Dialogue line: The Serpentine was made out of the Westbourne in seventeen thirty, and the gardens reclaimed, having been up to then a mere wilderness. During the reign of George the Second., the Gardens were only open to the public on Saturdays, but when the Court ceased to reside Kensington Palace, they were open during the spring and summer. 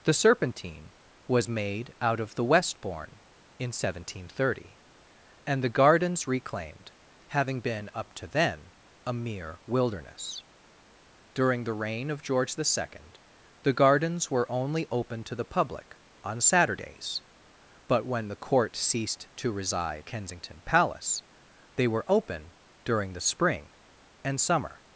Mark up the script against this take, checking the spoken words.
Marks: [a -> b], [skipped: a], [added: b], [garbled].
The Serpentine was made out of the Westbourne in seventeen thirty, and the gardens reclaimed, having been up to then a mere wilderness. During the reign of George the Second., the Gardens were only open to the public on Saturdays, but when the Court ceased to reside Kensington Palace, they were open during the spring and summer.